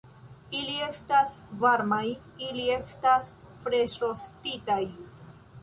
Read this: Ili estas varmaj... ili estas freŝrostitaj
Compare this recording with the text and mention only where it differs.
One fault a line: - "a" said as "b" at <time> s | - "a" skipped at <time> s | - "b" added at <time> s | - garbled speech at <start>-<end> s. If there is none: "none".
none